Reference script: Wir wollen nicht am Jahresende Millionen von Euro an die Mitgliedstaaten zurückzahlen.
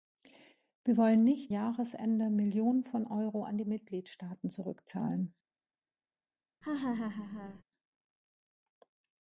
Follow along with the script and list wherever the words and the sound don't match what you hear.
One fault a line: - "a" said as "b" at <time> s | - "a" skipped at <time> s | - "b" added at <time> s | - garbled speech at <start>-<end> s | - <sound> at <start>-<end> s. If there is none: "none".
- "am" skipped at 1.5 s
- laugh at 6.6-7.6 s